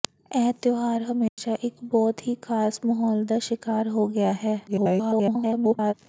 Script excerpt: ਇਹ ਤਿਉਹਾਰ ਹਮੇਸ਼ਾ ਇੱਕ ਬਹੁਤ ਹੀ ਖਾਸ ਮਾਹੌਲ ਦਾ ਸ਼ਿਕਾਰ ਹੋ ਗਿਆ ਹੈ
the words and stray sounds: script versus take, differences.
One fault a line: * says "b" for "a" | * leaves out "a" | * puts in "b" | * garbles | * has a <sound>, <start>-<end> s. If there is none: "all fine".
* has a dropout, 1.3-1.4 s
* garbles